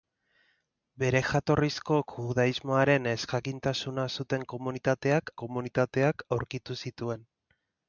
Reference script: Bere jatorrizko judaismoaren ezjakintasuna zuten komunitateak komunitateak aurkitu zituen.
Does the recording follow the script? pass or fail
pass